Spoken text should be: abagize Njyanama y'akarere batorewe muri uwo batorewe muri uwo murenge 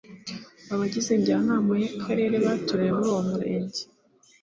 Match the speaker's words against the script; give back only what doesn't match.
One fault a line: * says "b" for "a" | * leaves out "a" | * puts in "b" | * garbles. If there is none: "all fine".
* leaves out "batorewe muri uwo"